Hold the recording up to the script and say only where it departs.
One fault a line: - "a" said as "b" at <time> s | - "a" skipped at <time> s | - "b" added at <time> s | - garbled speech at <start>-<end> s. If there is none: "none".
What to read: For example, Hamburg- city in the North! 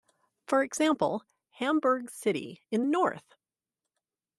- "the" skipped at 2.8 s